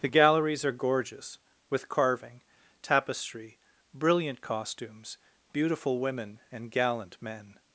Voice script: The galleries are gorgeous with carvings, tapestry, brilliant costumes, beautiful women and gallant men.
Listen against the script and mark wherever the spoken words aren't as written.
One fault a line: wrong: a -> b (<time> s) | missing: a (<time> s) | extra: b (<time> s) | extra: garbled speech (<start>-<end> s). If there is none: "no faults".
wrong: carvings -> carving (1.9 s)